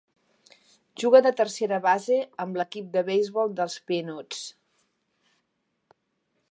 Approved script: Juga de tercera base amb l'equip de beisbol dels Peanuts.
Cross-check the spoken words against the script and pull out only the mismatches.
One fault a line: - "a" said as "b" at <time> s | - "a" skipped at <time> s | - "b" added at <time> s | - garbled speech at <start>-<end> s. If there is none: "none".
none